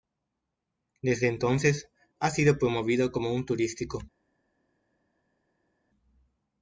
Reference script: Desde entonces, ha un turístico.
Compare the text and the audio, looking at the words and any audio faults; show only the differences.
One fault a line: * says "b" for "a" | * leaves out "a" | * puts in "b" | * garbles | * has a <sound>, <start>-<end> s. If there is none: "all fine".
* puts in "sido promovido como"